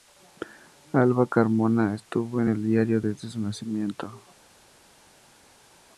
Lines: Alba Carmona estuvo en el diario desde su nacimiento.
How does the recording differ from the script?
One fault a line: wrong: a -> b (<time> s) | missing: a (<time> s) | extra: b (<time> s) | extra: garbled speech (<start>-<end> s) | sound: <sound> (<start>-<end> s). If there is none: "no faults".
no faults